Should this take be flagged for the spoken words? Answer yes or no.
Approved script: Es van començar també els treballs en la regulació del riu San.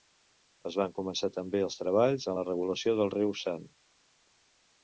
no